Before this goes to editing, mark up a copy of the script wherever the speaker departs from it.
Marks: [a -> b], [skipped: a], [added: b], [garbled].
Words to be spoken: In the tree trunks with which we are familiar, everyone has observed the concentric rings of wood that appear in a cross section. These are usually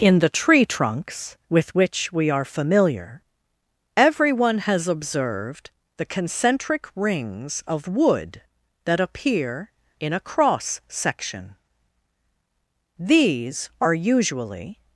In the tree trunks with which we are familiar, everyone has observed the concentric rings of wood that appear in a cross section. These are usually